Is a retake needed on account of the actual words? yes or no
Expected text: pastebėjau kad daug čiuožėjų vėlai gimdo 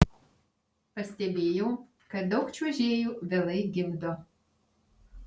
no